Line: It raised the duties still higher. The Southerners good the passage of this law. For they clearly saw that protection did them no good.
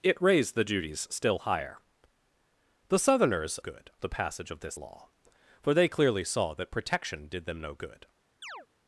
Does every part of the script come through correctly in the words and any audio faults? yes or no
no